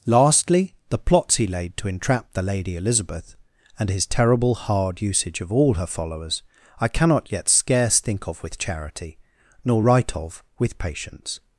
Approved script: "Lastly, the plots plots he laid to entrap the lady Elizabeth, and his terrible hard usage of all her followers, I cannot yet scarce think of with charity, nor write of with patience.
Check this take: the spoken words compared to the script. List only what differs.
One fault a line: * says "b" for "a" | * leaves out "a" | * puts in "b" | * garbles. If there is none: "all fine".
* leaves out "plots"